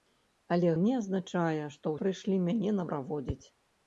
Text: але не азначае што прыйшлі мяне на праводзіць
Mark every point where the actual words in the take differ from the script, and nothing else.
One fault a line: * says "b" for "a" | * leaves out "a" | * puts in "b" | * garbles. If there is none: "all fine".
all fine